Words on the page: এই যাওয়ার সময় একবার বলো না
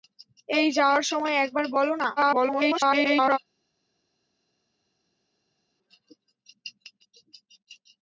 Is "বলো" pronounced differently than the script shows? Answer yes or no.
no